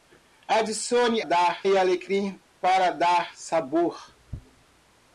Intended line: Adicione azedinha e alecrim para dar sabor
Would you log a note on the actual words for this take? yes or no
yes